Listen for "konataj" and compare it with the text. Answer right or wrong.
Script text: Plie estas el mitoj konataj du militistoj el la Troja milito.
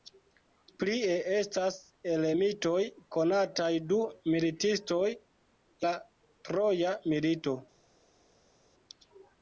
right